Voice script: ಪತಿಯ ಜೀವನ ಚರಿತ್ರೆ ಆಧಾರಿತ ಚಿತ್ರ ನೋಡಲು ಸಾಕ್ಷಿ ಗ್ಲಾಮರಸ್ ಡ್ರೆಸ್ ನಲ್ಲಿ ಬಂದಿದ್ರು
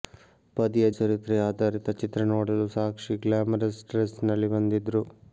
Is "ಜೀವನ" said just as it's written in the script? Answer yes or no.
no